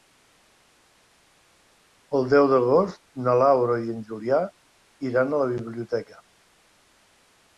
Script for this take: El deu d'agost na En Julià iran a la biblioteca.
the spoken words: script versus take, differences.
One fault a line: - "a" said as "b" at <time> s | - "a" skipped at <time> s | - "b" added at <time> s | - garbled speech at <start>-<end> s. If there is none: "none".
- "Laura i" added at 3.4 s